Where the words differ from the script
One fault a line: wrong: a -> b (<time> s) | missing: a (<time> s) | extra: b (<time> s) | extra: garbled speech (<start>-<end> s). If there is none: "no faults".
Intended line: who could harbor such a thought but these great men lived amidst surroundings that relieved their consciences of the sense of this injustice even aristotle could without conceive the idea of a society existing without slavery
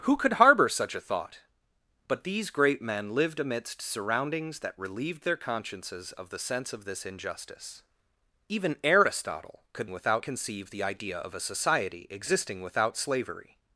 no faults